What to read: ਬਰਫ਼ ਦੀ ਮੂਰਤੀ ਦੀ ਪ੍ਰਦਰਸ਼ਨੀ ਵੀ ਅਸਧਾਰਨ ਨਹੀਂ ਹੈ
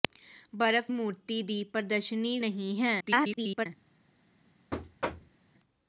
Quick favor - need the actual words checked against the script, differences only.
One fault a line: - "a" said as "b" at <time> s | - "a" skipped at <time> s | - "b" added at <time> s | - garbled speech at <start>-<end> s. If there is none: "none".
- "ਦੀ" skipped at 0.9 s
- "ਵੀ ਅਸਧਾਰਨ" skipped at 2.4 s
- garbled speech at 3.0-3.7 s